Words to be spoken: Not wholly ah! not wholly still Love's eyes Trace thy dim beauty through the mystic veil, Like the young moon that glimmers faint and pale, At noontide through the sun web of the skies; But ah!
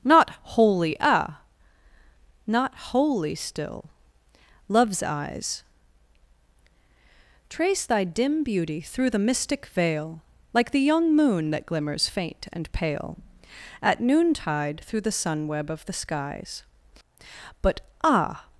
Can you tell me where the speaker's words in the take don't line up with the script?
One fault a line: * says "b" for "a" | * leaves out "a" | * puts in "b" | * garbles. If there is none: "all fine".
all fine